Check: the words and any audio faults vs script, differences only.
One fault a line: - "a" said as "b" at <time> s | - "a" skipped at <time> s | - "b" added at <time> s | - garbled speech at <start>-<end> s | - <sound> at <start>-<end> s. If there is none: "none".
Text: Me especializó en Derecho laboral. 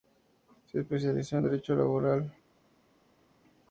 - "Me" said as "Se" at 0.7 s